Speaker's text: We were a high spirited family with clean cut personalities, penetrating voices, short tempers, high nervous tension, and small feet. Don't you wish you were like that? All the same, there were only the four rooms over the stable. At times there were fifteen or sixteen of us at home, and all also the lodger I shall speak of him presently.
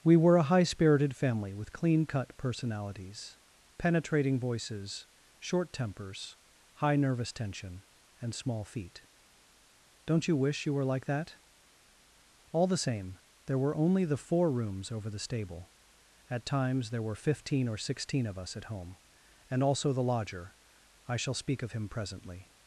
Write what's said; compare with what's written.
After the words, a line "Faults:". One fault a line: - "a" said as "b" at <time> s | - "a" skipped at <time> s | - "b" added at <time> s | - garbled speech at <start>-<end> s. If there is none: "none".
We were a high spirited family with clean cut personalities, penetrating voices, short tempers, high nervous tension, and small feet. Don't you wish you were like that? All the same, there were only the four rooms over the stable. At times there were fifteen or sixteen of us at home, and also the lodger I shall speak of him presently.
Faults:
- "all" skipped at 19.6 s